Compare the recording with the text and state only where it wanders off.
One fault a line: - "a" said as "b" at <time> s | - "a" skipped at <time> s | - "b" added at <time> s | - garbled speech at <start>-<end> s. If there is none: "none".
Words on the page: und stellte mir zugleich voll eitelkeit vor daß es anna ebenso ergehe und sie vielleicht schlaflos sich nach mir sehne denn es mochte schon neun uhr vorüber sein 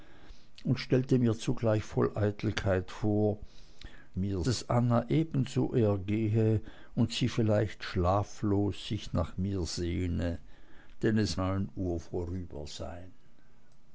- "daß" said as "mir" at 4.2 s
- "mochte schon" skipped at 11.4 s